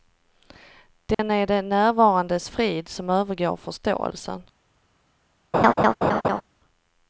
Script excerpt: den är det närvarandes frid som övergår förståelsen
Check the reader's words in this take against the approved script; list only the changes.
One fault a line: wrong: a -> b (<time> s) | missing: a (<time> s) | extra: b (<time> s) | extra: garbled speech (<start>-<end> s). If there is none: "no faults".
no faults